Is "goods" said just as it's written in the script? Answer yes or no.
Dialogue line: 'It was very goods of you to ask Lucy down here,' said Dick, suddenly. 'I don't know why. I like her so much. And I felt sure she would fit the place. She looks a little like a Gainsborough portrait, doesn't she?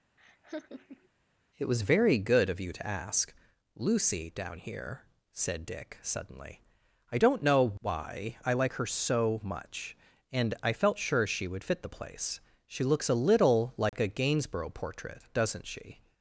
no